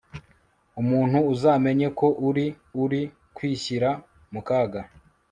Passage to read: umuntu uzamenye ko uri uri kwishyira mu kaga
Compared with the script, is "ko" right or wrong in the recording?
right